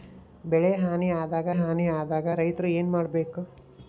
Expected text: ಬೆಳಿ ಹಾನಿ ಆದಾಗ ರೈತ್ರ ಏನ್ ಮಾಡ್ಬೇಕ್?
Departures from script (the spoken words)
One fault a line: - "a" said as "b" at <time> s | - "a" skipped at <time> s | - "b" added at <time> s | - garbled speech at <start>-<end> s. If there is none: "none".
- "ಹಾನಿ ಆದಾಗ" added at 1.5 s